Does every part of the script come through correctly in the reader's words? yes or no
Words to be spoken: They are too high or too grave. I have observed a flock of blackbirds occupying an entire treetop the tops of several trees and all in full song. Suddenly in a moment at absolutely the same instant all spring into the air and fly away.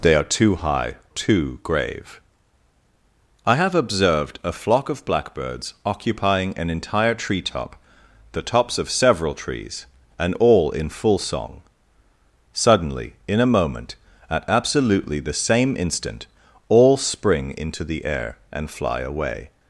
no